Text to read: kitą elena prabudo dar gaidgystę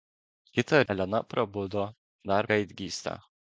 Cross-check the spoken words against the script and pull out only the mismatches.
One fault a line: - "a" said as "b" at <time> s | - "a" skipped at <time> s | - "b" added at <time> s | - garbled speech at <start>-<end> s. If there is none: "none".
none